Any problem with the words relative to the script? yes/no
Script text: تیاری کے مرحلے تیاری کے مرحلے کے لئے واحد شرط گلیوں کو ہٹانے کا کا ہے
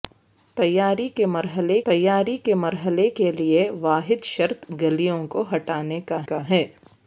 no